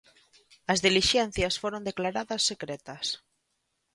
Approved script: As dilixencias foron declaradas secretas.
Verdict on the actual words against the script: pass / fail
pass